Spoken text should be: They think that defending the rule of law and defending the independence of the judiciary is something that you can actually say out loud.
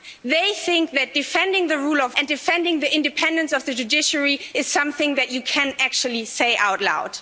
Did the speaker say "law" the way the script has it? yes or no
no